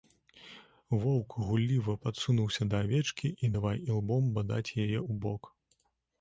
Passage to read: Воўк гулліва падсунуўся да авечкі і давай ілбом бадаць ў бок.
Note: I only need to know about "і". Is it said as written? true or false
true